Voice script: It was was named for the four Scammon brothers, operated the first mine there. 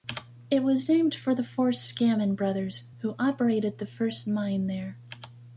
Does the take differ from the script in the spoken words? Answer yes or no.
yes